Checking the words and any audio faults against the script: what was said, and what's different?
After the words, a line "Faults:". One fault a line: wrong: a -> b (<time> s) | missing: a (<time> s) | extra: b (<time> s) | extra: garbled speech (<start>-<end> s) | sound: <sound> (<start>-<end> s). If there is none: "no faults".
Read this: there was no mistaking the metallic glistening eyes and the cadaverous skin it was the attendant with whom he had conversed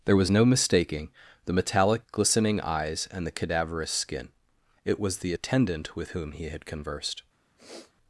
there was no mistaking the metallic glistening eyes and the cadaverous skin it was the attendant with whom he had conversed
Faults:
sound: sniff (7.6-7.9 s)